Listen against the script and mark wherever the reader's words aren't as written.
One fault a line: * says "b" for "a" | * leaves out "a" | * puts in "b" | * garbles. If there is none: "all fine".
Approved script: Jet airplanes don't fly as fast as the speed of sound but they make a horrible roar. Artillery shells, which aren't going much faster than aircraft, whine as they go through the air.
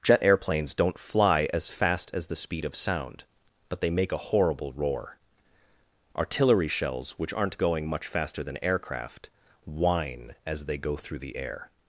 all fine